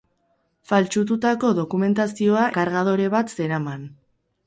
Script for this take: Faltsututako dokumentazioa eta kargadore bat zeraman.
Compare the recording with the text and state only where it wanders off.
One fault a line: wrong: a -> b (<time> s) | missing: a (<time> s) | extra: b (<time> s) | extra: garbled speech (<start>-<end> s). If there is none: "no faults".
missing: eta (2.5 s)